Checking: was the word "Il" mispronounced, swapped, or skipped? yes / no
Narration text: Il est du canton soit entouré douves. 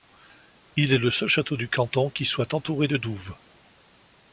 no